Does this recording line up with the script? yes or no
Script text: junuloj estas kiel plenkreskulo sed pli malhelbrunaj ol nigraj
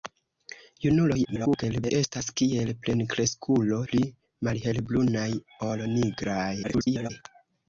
no